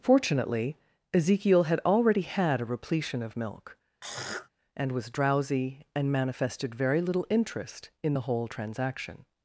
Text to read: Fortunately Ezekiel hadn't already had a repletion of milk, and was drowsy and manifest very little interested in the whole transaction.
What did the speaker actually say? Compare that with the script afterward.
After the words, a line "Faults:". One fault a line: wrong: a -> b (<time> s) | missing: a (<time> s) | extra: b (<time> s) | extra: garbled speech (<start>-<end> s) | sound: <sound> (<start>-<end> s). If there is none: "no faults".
Fortunately Ezekiel had already had a repletion of milk, and was drowsy and manifested very little interest in the whole transaction.
Faults:
wrong: hadn't -> had (1.6 s)
sound: throat clearing (4.0-4.5 s)
wrong: manifest -> manifested (6.1 s)
wrong: interested -> interest (7.3 s)